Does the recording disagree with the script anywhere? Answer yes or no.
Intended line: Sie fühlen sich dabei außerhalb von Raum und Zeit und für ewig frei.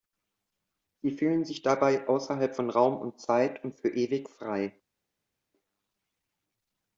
no